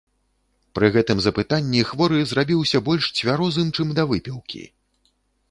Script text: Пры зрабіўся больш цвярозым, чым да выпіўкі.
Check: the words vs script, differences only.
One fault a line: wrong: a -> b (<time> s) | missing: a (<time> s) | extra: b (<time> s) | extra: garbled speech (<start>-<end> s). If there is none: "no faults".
extra: гэтым запытанні хворы (0.9 s)